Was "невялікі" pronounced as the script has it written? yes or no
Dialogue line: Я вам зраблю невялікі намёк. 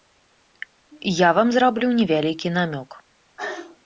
yes